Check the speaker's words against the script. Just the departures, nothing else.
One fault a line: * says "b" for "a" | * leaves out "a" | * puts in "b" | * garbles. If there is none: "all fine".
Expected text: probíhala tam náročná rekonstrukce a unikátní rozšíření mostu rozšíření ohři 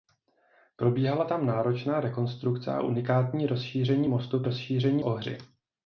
all fine